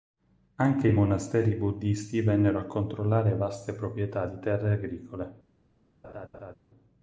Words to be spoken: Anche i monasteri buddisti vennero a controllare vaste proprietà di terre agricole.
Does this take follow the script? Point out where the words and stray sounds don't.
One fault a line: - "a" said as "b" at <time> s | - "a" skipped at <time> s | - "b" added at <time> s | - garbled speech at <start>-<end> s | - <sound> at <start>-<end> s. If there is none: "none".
- laugh at 6.0-6.5 s